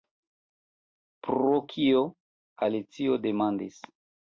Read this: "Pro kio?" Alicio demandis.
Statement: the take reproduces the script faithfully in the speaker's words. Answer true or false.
true